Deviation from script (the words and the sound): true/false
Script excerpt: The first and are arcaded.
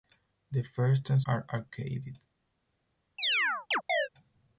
true